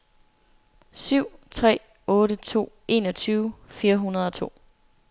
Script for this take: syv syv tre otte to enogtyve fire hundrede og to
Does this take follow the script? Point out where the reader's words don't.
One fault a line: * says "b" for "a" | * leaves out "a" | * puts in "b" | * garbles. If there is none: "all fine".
* leaves out "syv"